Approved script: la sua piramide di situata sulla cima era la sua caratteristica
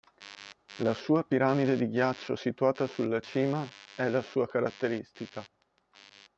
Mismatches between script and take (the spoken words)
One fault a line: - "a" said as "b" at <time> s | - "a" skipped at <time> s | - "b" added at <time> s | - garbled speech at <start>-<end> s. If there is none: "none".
- "ghiaccio" added at 1.9 s
- "era" said as "è" at 4.0 s